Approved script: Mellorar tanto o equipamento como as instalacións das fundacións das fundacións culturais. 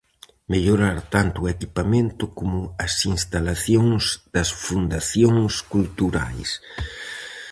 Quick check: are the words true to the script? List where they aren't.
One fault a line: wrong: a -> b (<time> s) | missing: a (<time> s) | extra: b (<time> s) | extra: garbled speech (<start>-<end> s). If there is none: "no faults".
missing: das fundacións (5.5 s)